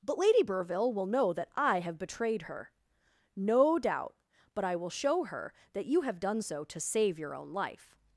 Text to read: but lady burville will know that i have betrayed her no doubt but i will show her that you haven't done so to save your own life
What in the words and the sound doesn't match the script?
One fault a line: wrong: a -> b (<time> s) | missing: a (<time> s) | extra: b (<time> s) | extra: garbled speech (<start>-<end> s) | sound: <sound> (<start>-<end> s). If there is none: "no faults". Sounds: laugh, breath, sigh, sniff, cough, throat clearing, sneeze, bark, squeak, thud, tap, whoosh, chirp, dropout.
wrong: haven't -> have (6.0 s)